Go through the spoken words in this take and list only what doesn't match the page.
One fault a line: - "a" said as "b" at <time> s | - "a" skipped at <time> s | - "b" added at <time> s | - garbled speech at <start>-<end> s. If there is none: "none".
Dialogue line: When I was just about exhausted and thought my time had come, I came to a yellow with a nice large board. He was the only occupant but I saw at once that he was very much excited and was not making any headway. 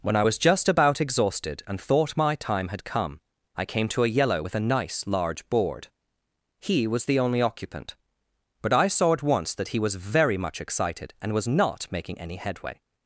none